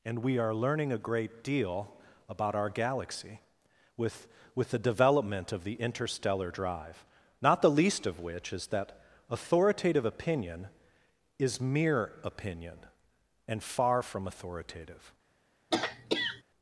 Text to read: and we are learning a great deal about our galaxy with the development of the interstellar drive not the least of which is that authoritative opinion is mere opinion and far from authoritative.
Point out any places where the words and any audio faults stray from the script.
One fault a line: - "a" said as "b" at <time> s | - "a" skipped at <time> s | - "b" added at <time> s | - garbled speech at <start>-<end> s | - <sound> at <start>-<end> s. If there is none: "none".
- "with" added at 4.5 s
- throat clearing at 15.7-16.4 s